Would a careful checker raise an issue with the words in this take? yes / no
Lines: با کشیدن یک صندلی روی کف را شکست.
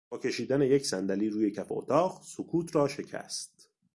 yes